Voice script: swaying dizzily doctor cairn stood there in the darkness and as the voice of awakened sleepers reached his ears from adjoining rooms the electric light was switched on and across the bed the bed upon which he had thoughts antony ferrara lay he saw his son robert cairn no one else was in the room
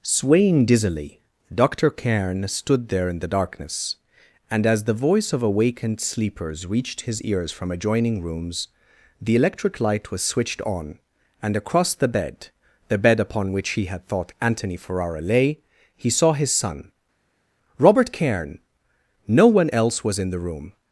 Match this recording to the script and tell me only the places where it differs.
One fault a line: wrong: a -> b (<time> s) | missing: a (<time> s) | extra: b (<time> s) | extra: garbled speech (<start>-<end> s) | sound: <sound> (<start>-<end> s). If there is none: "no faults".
wrong: thoughts -> thought (14.1 s)